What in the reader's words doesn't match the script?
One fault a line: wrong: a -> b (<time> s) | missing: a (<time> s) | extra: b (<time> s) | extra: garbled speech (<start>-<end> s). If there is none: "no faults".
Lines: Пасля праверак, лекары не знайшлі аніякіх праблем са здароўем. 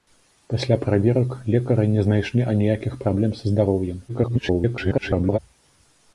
extra: garbled speech (4.1-5.4 s)